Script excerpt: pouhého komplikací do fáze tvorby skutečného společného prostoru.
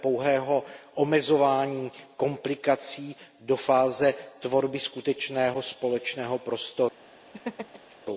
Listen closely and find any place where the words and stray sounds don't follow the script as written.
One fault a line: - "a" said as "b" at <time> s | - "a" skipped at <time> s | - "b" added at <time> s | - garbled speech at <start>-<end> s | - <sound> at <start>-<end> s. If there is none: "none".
- "omezování" added at 0.9 s
- laugh at 7.3-8.0 s